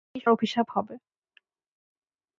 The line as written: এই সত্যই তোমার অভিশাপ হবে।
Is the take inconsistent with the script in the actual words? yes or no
yes